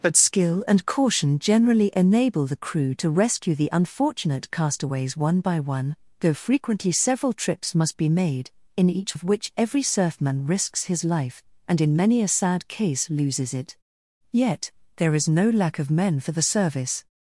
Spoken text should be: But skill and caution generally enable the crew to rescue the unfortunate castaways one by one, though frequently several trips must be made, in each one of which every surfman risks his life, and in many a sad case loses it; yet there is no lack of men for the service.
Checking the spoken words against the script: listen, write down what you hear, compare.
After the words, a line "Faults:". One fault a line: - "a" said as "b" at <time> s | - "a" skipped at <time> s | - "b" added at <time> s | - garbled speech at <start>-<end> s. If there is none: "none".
But skill and caution generally enable the crew to rescue the unfortunate castaways one by one, though frequently several trips must be made, in each of which every surfman risks his life, and in many a sad case loses it; yet there is no lack of men for the service.
Faults:
- "one" skipped at 9.2 s